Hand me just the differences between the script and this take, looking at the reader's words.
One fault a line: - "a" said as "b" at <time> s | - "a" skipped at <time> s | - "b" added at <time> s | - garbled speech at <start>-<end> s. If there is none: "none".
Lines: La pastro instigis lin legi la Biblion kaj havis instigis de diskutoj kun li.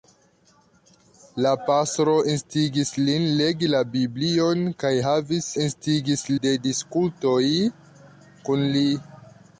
none